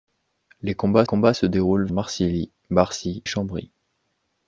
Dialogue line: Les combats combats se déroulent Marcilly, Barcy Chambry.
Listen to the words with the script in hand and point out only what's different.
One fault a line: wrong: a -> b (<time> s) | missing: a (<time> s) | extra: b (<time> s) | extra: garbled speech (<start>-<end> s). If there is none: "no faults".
no faults